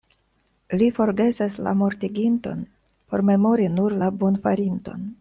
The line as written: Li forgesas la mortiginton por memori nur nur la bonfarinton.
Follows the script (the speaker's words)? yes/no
no